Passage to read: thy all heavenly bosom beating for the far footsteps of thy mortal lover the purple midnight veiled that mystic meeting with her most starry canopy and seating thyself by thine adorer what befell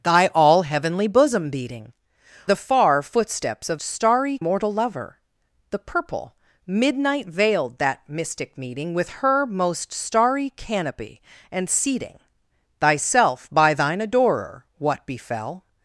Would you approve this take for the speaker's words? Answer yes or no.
no